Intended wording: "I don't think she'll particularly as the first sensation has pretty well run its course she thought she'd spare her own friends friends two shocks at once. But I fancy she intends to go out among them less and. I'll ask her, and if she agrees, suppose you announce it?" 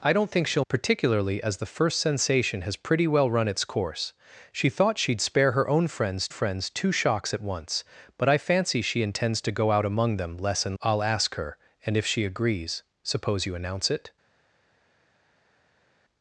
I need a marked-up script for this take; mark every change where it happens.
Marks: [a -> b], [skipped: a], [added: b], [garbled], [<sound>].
"I don't think she'll particularly as the first sensation has pretty well run its course she thought she'd spare her own friends friends two shocks at once. But I fancy she intends to go out among them less and. I'll ask her, and if she agrees, suppose you announce it?"